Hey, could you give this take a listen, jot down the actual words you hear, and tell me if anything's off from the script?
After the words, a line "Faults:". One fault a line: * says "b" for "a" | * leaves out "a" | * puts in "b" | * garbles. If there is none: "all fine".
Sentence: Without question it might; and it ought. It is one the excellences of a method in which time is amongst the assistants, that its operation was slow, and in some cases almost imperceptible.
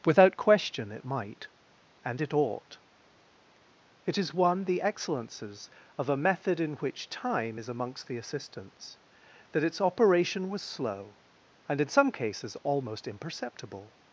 Without question it might; and it ought. It is one the excellences of a method in which time is amongst the assistants, that its operation was slow, and in some cases almost imperceptible.
Faults:
all fine